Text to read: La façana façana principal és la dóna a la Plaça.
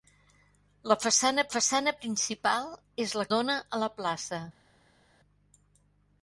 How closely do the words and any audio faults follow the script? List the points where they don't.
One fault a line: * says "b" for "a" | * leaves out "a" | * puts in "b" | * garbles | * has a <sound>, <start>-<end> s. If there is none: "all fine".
all fine